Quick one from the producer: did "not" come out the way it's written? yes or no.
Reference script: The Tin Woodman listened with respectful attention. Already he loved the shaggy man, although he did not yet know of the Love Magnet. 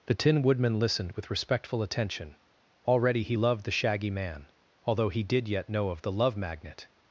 no